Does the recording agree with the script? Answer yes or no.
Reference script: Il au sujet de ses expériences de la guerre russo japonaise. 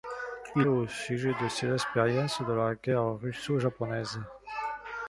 yes